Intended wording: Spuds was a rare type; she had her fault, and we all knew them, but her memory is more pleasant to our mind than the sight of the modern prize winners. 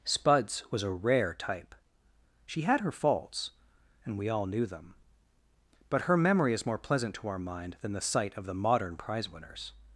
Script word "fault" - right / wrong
wrong